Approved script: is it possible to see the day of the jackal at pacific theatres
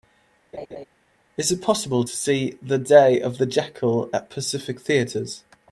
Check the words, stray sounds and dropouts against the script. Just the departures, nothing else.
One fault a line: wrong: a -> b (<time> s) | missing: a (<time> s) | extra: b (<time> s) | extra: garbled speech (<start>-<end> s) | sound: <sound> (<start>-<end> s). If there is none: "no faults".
sound: laugh (0.5-0.8 s)